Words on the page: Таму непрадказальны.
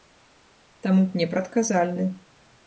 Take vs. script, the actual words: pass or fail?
pass